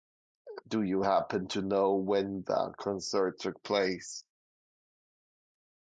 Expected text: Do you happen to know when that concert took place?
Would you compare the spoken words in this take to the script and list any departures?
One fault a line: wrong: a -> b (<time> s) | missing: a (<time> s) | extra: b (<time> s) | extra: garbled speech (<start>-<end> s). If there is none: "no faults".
no faults